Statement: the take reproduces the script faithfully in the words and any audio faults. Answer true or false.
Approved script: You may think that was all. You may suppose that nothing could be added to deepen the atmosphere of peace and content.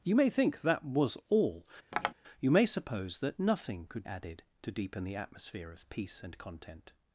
false